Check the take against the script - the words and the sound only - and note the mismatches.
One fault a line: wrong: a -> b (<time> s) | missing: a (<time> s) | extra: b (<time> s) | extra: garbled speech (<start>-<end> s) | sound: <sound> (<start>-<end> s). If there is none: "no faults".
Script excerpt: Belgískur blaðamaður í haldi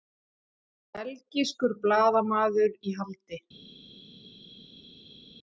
no faults